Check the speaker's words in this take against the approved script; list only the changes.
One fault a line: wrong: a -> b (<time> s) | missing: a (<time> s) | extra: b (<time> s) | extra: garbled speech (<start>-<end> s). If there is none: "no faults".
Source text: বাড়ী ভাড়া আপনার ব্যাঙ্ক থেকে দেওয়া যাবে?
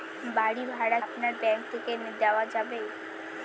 no faults